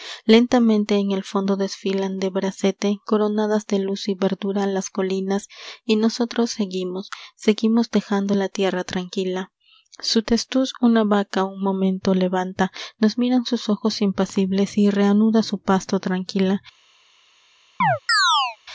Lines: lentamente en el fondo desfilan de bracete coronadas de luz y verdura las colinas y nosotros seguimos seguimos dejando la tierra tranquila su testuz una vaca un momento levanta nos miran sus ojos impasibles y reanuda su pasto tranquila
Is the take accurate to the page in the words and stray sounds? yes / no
no